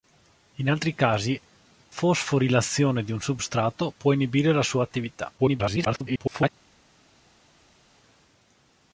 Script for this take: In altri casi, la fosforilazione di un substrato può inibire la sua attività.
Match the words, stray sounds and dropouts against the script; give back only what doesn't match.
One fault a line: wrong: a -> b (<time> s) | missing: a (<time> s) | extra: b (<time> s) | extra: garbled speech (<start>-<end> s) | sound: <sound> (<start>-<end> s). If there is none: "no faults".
missing: la (1.4 s)
extra: garbled speech (5.4-6.5 s)